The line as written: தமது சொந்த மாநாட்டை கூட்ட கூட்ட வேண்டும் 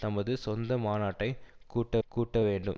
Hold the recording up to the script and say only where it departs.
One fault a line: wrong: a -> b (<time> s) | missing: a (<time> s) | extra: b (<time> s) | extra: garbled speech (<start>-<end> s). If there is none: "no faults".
no faults